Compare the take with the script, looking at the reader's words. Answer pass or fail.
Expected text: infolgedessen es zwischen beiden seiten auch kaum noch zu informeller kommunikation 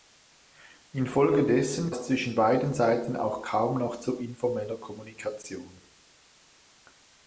pass